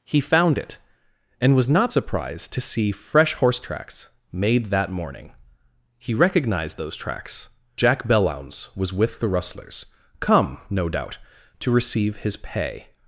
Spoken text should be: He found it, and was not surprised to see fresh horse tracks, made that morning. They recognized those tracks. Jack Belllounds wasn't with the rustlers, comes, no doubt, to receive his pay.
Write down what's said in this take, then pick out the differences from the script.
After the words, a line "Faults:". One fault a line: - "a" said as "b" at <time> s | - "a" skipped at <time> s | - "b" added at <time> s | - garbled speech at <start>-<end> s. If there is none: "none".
He found it, and was not surprised to see fresh horse tracks, made that morning. He recognized those tracks. Jack Belllounds was with the rustlers, come, no doubt, to receive his pay.
Faults:
- "They" said as "He" at 6.0 s
- "wasn't" said as "was" at 8.8 s
- "comes" said as "come" at 10.2 s